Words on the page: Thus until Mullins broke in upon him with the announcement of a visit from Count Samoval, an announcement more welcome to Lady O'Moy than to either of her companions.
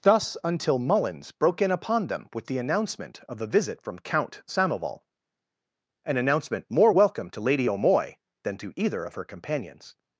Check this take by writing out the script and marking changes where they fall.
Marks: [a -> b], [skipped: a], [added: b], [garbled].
Thus until Mullins broke in upon [him -> them] with the announcement of a visit from Count Samoval, an announcement more welcome to Lady O'Moy than to either of her companions.